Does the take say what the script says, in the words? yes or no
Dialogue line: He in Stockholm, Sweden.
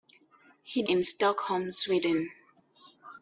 yes